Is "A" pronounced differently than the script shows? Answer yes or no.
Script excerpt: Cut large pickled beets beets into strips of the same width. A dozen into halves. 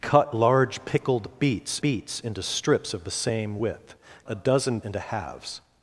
no